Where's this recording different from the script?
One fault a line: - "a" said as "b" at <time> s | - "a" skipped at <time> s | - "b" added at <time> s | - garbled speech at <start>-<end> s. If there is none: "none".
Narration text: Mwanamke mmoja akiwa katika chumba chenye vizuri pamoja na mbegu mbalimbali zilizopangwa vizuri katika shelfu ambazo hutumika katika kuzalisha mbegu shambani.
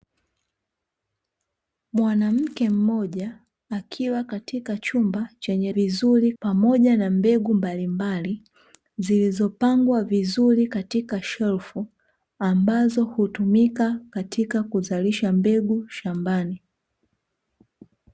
none